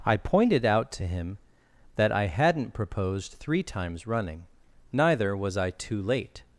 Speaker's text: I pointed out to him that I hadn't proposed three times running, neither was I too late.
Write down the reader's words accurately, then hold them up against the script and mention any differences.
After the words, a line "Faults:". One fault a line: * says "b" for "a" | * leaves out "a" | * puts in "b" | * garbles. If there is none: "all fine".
I pointed out to him that I hadn't proposed three times running, neither was I too late.
Faults:
all fine